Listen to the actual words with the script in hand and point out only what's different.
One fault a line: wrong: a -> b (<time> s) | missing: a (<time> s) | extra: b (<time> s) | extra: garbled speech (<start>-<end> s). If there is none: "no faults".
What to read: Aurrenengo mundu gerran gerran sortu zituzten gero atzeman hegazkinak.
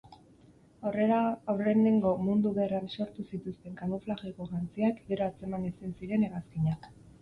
missing: gerran (2.9 s)
extra: kamuflajeko jantziak (3.9 s)
extra: ezin ziren (5.7 s)